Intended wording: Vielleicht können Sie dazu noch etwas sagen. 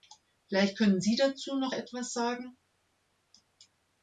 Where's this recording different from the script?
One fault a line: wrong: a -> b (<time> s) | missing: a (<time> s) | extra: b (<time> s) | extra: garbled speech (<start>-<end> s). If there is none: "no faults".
no faults